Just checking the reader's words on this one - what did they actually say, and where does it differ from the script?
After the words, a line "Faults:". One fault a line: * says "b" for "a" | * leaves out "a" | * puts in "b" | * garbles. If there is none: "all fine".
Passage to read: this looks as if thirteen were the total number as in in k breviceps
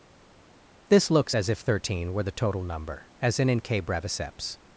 this looks as if thirteen were the total number as in in k breviceps
Faults:
all fine